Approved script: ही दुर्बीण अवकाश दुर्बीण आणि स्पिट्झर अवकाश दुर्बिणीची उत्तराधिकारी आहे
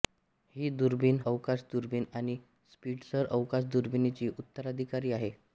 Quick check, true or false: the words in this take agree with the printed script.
true